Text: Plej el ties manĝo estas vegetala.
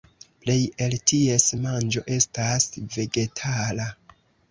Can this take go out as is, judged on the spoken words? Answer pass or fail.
pass